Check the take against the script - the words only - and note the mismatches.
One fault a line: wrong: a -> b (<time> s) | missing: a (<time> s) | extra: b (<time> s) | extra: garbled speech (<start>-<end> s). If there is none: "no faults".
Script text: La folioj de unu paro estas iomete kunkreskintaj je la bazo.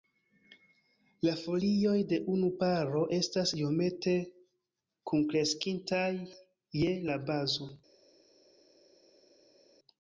no faults